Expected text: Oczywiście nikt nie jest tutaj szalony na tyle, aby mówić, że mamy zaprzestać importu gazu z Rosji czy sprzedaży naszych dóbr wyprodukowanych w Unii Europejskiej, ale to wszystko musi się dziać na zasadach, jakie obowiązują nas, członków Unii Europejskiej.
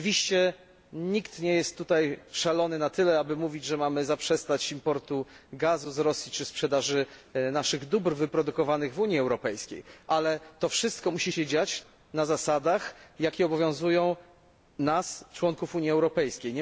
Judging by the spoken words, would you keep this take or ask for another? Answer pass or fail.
pass